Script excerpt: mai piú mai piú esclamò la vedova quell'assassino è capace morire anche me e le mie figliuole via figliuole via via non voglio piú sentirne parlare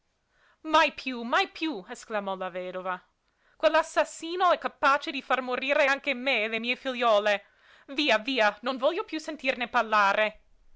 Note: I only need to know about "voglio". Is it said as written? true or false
true